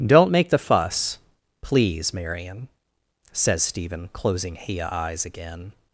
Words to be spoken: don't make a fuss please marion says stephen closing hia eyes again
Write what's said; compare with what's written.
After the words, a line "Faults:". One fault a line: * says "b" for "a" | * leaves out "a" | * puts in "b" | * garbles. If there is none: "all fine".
don't make the fuss please marion says stephen closing hia eyes again
Faults:
* says "the" for "a"